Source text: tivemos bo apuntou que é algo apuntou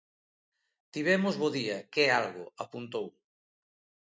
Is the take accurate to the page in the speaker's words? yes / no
no